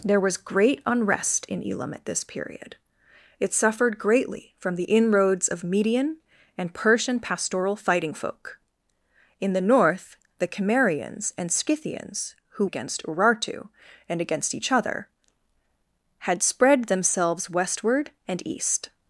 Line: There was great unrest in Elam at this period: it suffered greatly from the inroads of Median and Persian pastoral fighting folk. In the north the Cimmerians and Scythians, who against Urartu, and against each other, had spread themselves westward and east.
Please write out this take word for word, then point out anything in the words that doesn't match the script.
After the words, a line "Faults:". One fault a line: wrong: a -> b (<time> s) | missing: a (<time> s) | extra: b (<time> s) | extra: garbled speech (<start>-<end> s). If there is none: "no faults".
There was great unrest in Elam at this period: it suffered greatly from the inroads of Median and Persian pastoral fighting folk. In the north the Cimmerians and Scythians, who against Urartu, and against each other, had spread themselves westward and east.
Faults:
no faults